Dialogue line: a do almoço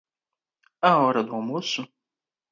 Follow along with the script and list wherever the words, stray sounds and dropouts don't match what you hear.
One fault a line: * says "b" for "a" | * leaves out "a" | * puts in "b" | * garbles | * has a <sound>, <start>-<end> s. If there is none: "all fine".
* puts in "hora"